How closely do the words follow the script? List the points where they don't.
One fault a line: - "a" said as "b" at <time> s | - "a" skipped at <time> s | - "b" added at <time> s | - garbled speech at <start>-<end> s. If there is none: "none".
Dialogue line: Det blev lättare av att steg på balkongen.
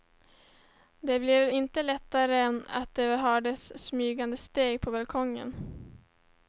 - "inte" added at 1.5 s
- "det hördes smygande" added at 2.9 s